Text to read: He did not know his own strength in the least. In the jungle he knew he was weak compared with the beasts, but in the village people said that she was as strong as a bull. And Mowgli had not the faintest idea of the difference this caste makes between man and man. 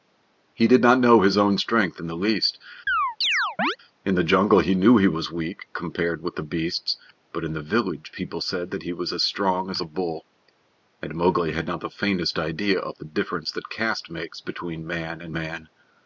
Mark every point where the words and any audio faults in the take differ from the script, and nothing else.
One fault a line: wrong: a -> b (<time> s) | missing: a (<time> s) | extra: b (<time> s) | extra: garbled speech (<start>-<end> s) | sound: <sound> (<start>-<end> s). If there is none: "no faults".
sound: chirp (2.9-3.8 s)
wrong: she -> he (8.8 s)
wrong: this -> that (13.5 s)